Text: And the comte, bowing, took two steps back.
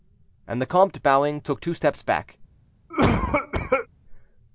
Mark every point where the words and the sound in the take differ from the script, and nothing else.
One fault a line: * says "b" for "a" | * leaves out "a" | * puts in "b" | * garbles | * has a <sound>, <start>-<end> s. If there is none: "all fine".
* has a cough, 2.9-3.9 s